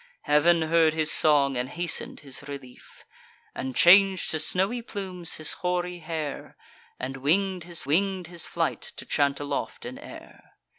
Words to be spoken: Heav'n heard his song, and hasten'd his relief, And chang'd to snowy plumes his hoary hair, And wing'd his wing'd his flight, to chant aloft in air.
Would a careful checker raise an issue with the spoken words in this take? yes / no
no